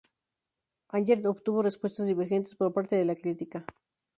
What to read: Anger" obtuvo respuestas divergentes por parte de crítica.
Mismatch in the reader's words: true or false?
true